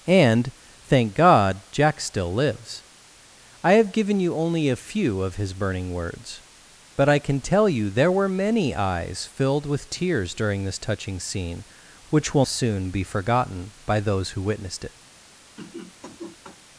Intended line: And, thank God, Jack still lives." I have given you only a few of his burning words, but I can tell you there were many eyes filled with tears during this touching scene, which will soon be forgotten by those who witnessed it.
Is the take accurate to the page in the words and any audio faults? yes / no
no